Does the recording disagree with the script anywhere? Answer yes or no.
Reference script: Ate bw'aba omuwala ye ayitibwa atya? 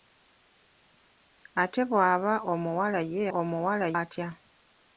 yes